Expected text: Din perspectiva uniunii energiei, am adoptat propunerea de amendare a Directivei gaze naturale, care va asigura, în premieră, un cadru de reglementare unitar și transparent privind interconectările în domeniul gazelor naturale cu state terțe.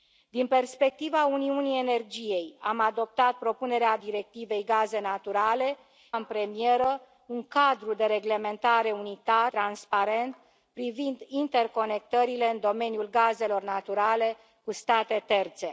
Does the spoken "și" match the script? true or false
false